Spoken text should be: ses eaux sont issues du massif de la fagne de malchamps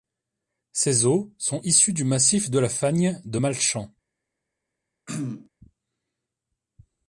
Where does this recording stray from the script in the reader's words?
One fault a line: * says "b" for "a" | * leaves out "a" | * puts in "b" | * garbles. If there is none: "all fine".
all fine